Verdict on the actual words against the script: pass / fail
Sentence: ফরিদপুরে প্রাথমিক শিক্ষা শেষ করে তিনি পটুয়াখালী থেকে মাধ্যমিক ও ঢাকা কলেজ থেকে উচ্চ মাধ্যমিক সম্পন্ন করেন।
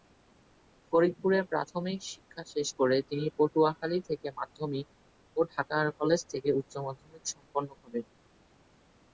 pass